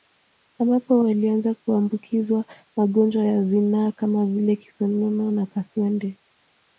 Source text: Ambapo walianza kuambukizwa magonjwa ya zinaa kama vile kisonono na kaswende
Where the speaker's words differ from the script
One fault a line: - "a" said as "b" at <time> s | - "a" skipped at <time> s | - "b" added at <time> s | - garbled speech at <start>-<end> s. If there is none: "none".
none